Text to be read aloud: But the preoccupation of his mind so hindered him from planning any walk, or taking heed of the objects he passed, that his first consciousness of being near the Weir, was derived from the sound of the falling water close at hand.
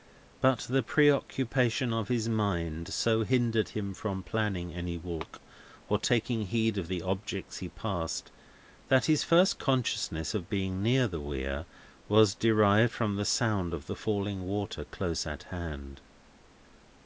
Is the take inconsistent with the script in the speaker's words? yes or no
no